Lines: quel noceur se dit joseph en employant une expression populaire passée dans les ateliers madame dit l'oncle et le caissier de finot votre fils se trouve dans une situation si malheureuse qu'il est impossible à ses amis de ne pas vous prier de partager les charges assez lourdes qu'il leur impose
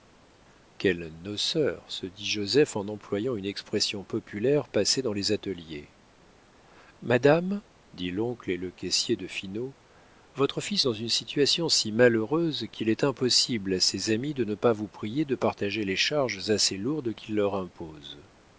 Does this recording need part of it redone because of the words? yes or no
yes